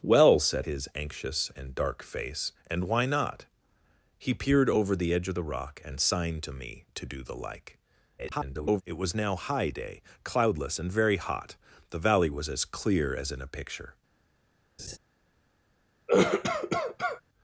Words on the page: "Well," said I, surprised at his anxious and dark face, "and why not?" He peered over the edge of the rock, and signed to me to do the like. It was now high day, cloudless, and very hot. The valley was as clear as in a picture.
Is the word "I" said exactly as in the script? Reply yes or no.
no